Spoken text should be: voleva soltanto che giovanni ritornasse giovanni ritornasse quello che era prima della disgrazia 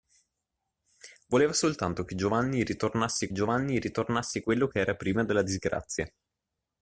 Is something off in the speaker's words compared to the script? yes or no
no